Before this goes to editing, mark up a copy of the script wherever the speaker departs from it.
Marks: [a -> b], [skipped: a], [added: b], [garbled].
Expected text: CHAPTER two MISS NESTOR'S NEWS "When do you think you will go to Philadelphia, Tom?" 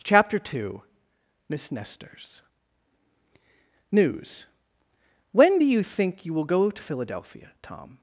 CHAPTER two MISS NESTOR'S NEWS "When do you think you will go to Philadelphia, Tom?"